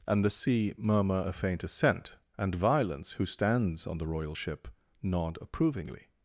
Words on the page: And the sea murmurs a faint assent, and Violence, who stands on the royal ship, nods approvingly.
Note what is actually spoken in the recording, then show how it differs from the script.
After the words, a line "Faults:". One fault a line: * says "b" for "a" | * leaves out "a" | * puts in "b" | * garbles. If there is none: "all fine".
And the sea murmur a faint assent, and Violence, who stands on the royal ship, nod approvingly.
Faults:
* says "murmur" for "murmurs"
* says "nod" for "nods"